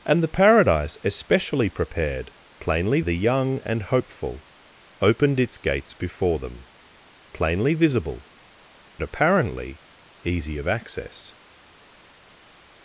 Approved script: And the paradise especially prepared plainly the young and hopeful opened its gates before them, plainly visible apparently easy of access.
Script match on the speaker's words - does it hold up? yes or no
yes